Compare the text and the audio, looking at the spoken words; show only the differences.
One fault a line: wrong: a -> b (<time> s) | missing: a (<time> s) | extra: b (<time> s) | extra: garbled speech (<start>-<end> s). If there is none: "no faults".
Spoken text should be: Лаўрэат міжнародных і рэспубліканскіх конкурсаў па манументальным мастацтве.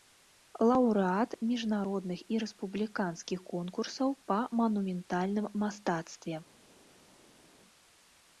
no faults